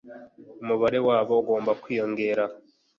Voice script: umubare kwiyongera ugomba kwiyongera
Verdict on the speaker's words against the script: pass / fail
fail